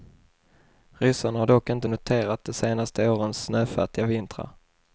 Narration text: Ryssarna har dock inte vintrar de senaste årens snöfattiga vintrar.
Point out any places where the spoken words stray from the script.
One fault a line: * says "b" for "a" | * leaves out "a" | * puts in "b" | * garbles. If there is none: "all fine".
* says "noterat" for "vintrar"